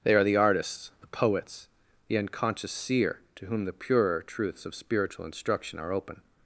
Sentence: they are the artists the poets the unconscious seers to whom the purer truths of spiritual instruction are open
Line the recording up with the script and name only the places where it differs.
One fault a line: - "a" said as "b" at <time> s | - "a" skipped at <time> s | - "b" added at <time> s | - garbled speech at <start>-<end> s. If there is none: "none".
- "seers" said as "seer" at 2.7 s